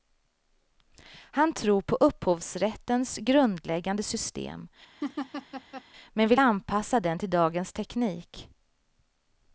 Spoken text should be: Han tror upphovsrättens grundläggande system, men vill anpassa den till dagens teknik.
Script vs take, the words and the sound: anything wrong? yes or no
yes